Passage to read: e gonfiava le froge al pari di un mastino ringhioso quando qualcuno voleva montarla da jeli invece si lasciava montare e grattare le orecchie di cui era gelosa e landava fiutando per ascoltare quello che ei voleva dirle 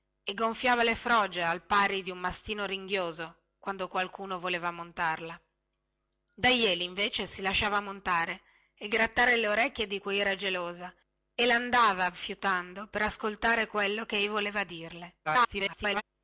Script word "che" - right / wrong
right